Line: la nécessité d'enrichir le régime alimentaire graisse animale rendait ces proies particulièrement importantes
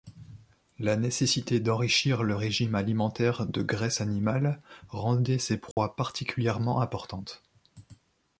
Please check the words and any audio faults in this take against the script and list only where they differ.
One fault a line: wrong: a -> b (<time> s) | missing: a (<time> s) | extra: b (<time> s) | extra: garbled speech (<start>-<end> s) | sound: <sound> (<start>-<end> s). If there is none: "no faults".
extra: de (3.4 s)
sound: dropout (5.7-5.8 s)